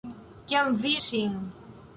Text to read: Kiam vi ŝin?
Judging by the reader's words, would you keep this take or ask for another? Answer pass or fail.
pass